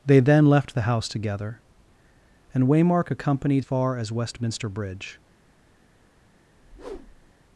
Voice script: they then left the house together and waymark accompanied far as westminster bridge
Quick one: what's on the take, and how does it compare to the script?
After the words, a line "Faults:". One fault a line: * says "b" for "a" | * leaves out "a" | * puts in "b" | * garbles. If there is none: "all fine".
they then left the house together and waymark accompanied far as westminster bridge
Faults:
all fine